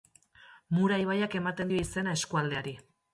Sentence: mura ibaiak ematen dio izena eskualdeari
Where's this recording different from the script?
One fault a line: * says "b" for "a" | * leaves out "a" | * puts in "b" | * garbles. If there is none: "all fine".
all fine